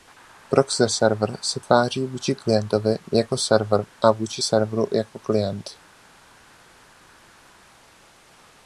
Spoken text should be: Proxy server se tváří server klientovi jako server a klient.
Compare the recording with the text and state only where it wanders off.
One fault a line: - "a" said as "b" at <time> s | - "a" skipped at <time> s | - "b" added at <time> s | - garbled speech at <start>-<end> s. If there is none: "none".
- "server" said as "vůči" at 2.0 s
- "vůči serveru jako" added at 4.1 s